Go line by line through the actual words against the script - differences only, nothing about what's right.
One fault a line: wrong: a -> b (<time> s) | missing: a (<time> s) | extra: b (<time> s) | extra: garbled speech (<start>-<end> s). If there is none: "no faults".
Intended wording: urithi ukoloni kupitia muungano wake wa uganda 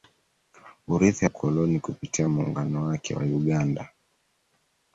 no faults